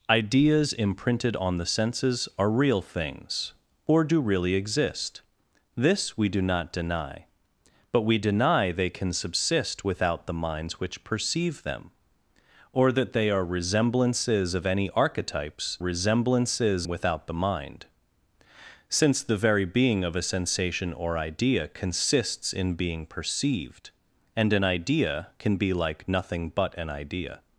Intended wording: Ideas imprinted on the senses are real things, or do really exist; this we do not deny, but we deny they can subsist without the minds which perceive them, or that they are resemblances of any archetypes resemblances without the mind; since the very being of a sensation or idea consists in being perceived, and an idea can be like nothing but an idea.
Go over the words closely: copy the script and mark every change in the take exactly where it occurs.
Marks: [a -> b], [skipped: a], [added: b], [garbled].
Ideas imprinted on the senses are real things, or do really exist; this we do not deny, but we deny they can subsist without the minds which perceive them, or that they are resemblances of any archetypes resemblances without the mind; since the very being of a sensation or idea consists in being perceived, and an idea can be like nothing but an idea.